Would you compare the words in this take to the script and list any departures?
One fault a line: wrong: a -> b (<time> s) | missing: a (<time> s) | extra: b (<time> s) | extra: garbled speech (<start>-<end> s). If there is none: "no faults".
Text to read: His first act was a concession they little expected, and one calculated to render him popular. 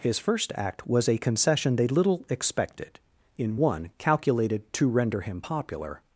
wrong: and -> in (3.4 s)